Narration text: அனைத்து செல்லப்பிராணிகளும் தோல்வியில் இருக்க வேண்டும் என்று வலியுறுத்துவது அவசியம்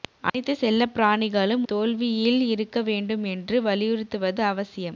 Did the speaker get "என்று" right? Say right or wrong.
right